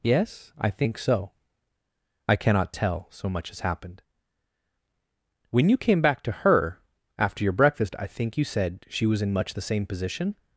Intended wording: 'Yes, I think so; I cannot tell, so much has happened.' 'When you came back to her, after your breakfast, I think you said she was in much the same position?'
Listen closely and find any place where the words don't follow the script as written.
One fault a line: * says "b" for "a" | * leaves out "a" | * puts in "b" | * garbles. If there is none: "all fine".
all fine